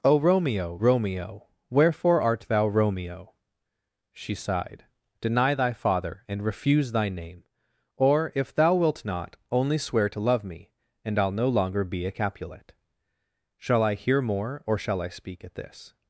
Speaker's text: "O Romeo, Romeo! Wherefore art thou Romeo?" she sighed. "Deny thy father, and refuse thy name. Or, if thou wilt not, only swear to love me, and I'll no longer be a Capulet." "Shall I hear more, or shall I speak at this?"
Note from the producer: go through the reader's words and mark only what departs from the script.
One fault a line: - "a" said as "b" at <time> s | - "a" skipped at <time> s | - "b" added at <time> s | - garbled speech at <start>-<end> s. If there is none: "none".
none